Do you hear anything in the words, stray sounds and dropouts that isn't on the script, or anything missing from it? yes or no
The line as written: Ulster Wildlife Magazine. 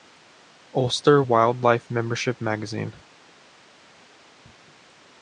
yes